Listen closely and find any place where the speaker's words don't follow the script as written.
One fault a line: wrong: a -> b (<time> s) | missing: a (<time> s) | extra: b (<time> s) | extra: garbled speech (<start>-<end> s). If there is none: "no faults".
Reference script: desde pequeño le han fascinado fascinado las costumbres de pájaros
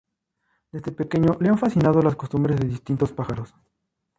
missing: fascinado (2.0 s)
extra: distintos (2.7 s)